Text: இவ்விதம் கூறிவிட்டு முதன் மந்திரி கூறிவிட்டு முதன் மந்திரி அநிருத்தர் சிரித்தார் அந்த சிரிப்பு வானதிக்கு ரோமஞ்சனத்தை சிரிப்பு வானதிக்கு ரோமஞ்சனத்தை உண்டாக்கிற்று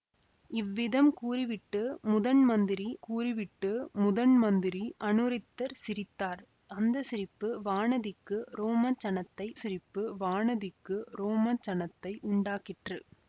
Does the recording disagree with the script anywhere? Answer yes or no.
no